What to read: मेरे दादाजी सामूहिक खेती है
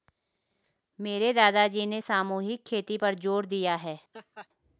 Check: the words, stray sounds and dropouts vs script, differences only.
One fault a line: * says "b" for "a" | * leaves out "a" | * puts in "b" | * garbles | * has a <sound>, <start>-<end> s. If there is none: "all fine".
* puts in "ने"
* puts in "पर जोर दिया"
* has a laugh, 4.1-4.5 s